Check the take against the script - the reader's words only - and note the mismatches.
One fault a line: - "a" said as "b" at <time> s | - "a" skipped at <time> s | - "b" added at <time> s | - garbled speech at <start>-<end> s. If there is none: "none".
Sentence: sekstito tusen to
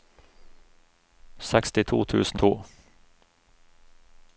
none